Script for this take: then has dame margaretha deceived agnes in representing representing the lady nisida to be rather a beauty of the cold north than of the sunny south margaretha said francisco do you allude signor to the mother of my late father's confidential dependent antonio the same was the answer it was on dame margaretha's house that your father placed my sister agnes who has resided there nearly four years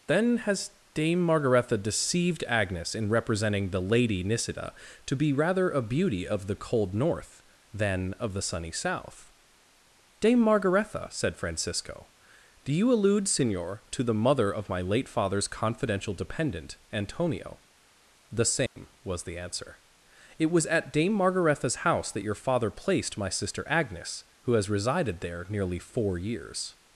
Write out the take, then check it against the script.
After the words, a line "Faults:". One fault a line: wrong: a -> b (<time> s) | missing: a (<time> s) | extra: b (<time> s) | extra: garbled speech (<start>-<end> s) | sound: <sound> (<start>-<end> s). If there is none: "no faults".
then has dame margaretha deceived agnes in representing the lady nisida to be rather a beauty of the cold north than of the sunny south dame margaretha said francisco do you allude signor to the mother of my late father's confidential dependent antonio the same was the answer it was at dame margaretha's house that your father placed my sister agnes who has resided there nearly four years
Faults:
missing: representing (3.7 s)
extra: dame (10.2 s)
sound: dropout (18.7-18.8 s)
wrong: on -> at (20.6 s)